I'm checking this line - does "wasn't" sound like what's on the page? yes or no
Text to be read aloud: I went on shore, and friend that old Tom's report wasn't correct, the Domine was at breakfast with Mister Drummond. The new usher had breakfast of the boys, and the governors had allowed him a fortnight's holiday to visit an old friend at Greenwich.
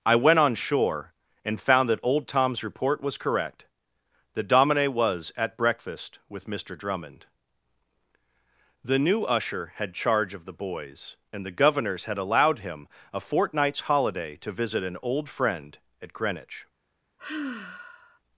no